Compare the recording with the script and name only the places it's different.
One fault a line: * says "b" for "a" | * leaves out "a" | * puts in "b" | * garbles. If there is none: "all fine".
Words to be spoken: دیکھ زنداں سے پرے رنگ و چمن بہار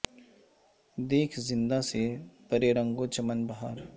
all fine